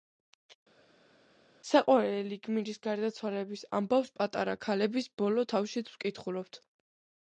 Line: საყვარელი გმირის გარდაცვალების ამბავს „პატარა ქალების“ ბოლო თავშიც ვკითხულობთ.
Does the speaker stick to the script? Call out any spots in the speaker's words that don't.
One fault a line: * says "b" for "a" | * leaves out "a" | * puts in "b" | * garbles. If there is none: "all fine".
all fine